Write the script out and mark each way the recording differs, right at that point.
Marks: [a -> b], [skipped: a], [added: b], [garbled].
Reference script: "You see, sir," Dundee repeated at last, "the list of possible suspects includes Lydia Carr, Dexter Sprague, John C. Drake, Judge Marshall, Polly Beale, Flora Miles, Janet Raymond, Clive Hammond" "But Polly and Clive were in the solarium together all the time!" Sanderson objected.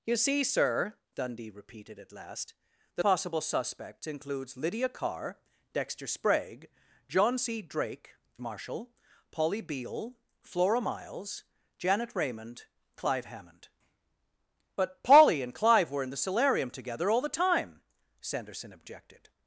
"You see, sir," Dundee repeated at last, "the [skipped: list of] possible suspects includes Lydia Carr, Dexter Sprague, John C. Drake, [skipped: Judge] Marshall, Polly Beale, Flora Miles, Janet Raymond, Clive Hammond" "But Polly and Clive were in the solarium together all the time!" Sanderson objected.